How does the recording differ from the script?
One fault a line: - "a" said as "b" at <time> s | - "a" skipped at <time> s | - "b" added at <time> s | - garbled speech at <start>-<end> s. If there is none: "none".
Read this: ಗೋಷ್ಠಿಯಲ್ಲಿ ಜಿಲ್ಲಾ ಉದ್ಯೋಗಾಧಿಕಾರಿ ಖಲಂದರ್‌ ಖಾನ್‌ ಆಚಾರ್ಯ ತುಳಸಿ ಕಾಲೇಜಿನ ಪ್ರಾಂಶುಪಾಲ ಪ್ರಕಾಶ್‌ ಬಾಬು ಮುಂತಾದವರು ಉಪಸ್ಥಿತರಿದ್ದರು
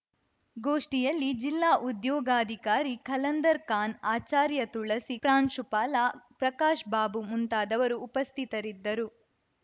- "ಕಾಲೇಜಿನ" skipped at 5.2 s